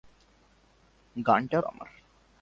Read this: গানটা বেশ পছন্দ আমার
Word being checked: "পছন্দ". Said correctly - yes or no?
no